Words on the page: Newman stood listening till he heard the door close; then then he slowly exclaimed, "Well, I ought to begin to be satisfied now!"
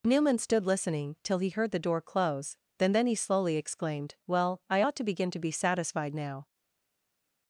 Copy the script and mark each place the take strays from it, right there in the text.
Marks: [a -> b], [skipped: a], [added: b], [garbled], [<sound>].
Newman stood listening till he heard the door close; then then he slowly exclaimed, "Well, I ought to begin to be satisfied now!"